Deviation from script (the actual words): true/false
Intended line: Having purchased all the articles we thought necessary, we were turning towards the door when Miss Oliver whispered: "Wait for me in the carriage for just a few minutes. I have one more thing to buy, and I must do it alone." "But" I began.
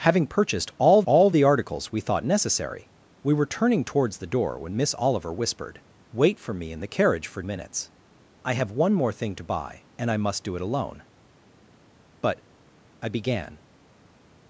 true